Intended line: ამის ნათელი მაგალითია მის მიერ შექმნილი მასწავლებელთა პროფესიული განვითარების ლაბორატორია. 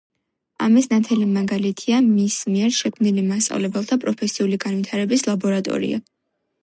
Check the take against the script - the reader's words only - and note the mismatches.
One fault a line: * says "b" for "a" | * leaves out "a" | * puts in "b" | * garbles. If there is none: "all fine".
all fine